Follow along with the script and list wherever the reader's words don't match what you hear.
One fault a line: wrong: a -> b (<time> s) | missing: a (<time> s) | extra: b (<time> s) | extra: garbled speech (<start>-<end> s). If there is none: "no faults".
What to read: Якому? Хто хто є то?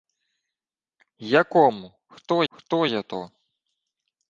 no faults